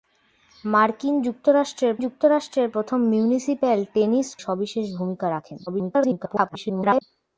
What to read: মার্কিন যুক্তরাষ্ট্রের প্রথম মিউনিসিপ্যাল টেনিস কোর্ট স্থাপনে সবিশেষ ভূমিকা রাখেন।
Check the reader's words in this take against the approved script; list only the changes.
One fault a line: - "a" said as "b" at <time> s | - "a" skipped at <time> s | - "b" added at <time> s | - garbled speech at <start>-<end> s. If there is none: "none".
- "যুক্তরাষ্ট্রের" added at 2.0 s
- "কোর্ট স্থাপনে" skipped at 4.3 s
- garbled speech at 5.7-7.0 s